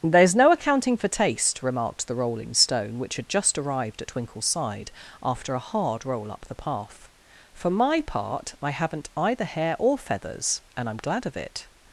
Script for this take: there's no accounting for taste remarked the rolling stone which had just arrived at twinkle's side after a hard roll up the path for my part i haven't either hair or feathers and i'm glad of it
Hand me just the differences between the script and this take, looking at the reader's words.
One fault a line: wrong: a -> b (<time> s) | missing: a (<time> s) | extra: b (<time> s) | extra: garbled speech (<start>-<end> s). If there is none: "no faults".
no faults